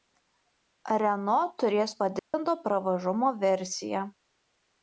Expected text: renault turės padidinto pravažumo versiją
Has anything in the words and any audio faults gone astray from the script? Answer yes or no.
yes